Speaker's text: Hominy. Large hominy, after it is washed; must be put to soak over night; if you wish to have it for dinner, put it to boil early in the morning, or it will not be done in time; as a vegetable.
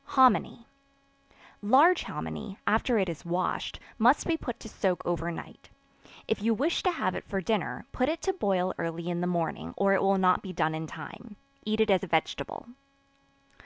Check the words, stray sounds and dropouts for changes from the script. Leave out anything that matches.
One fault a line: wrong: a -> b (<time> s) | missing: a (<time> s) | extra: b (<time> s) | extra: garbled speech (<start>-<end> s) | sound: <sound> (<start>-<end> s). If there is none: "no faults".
extra: eat it (11.7 s)